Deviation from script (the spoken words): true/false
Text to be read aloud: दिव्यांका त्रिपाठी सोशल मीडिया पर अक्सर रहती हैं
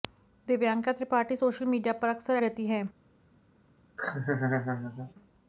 false